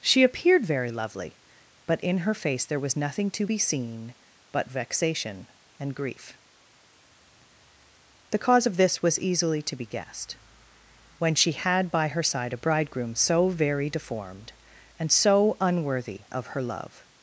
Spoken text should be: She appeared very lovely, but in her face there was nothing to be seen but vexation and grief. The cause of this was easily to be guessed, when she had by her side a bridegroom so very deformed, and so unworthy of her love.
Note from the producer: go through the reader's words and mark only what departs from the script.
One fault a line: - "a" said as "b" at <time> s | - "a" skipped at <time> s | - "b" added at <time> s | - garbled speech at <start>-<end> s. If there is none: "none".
none